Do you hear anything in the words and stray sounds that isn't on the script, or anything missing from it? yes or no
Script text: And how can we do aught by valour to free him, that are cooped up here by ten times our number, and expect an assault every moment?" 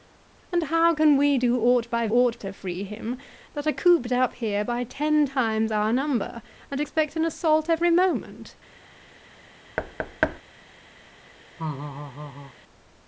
yes